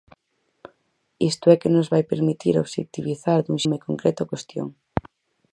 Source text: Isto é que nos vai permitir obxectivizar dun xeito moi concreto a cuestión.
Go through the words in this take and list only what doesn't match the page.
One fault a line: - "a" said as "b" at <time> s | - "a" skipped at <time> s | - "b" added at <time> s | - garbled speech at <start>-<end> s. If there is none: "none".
- "xeito" skipped at 3.6 s